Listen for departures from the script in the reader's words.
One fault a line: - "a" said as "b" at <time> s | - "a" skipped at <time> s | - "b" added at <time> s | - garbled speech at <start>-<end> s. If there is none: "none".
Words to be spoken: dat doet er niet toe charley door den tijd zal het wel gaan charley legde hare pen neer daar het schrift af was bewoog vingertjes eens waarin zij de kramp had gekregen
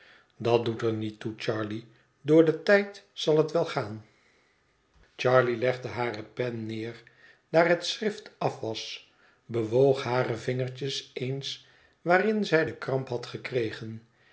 - "hare" added at 10.0 s